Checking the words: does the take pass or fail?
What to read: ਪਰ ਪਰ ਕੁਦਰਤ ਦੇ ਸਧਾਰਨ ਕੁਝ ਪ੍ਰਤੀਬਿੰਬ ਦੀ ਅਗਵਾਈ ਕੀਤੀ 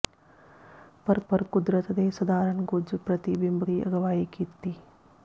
pass